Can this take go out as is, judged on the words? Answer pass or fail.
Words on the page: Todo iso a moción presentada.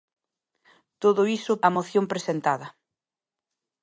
pass